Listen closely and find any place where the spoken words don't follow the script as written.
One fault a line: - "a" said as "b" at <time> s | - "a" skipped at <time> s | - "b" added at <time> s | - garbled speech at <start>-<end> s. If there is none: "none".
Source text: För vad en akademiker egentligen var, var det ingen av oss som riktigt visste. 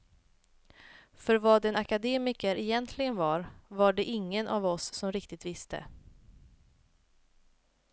none